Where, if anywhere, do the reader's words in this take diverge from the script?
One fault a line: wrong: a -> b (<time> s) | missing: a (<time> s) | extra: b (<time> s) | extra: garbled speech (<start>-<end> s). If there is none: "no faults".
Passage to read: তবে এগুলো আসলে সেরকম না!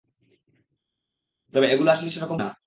no faults